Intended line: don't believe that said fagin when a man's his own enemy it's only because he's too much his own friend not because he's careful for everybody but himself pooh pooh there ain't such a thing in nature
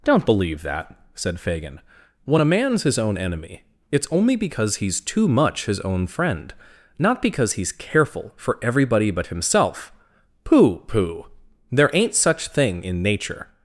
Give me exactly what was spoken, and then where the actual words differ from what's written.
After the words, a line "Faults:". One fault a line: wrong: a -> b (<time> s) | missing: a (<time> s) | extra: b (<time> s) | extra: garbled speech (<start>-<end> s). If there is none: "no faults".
don't believe that said fagin when a man's his own enemy it's only because he's too much his own friend not because he's careful for everybody but himself pooh pooh there ain't such thing in nature
Faults:
missing: a (12.5 s)